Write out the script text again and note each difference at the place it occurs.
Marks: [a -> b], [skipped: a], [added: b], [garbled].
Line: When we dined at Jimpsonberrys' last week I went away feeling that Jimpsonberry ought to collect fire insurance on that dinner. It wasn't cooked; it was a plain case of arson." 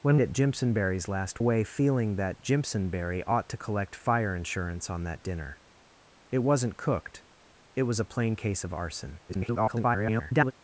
When [skipped: we dined] at Jimpsonberrys' last [skipped: week I went] away feeling that Jimpsonberry ought to collect fire insurance on that dinner. It wasn't cooked; it was a plain case of arson." [garbled]